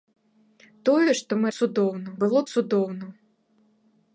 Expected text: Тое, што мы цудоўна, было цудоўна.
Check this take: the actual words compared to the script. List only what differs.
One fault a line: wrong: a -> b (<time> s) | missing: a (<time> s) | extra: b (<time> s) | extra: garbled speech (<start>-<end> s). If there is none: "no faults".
no faults